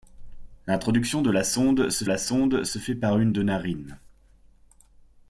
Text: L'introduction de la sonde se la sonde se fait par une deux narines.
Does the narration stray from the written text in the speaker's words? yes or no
no